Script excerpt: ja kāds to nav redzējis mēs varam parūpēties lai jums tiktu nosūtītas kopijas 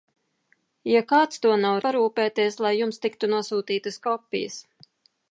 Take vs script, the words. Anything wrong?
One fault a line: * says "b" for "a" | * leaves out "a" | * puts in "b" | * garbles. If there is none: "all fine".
* leaves out "redzējis mēs varam"